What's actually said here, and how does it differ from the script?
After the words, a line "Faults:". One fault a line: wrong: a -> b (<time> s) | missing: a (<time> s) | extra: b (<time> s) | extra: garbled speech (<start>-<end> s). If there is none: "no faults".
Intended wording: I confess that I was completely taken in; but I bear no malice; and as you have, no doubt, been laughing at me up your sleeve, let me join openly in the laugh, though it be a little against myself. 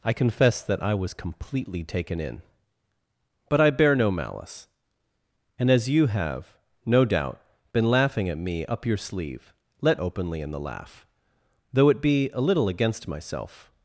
I confess that I was completely taken in; but I bear no malice; and as you have, no doubt, been laughing at me up your sleeve, let openly in the laugh, though it be a little against myself.
Faults:
missing: me join (10.0 s)